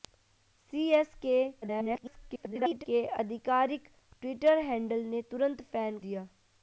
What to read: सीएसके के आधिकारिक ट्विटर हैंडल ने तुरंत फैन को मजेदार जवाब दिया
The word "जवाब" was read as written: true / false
false